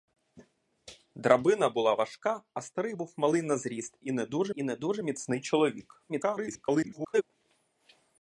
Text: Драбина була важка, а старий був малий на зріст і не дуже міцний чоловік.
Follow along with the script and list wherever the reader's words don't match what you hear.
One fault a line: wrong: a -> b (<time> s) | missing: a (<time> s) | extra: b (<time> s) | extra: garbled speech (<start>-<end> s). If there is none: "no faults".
extra: і не дуже (4.5 s)
extra: garbled speech (6.1-7.2 s)